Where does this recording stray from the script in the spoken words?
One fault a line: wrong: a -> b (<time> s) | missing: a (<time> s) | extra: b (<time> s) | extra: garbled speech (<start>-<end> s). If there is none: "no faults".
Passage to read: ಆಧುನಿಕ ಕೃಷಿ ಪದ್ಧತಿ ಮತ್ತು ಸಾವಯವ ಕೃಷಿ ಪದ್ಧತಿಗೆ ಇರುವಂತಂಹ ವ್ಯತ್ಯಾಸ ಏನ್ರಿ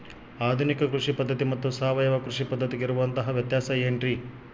no faults